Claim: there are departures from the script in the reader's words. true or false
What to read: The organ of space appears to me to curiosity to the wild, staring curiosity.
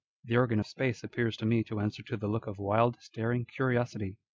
true